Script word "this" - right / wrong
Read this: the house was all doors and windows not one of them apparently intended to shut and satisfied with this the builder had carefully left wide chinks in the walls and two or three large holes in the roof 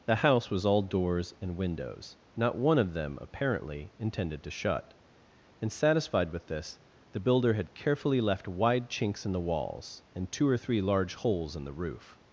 right